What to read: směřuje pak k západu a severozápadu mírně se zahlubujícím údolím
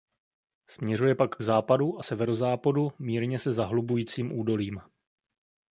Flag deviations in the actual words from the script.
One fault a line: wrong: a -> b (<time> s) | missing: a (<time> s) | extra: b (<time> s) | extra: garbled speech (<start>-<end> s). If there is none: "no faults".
no faults